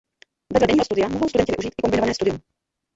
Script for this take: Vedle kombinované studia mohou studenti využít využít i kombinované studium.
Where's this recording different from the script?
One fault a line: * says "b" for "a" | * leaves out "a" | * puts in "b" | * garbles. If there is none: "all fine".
* says "denního" for "kombinované"
* leaves out "využít"